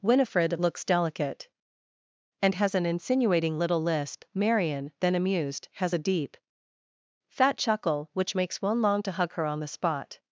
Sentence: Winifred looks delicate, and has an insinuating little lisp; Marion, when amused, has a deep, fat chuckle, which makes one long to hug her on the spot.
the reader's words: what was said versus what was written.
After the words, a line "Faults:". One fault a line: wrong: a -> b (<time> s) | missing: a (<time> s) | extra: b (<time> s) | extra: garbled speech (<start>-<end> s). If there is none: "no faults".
Winifred looks delicate, and has an insinuating little lisp; Marion, then amused, has a deep, fat chuckle, which makes one long to hug her on the spot.
Faults:
wrong: when -> then (5.0 s)